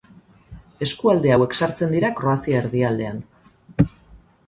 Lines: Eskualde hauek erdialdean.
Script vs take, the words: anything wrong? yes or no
yes